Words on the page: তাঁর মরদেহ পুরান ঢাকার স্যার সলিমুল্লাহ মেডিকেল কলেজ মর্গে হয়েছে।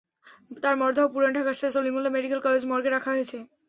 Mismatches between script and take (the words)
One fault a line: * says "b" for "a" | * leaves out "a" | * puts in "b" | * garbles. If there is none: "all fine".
* puts in "রাখা"